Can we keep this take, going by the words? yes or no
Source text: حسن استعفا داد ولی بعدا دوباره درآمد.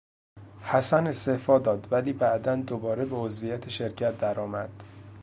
no